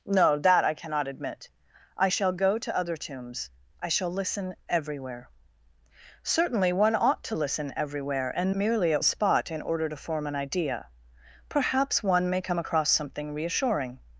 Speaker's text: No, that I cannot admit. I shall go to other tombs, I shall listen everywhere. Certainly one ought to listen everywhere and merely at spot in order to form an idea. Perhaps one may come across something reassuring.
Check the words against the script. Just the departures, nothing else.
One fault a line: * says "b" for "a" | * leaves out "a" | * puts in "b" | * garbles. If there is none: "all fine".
all fine